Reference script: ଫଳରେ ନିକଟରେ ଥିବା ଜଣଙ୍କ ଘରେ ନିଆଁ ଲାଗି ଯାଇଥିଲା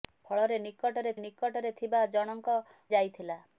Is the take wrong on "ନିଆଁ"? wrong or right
wrong